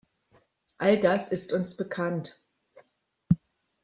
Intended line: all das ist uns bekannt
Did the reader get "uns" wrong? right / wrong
right